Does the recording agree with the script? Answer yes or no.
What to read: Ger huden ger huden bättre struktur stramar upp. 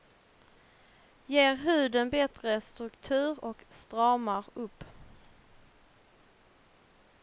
no